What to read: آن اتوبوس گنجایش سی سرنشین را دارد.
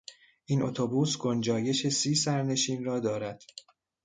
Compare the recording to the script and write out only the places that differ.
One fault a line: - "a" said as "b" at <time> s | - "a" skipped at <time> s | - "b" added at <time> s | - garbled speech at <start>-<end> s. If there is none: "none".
- "آن" said as "این" at 0.5 s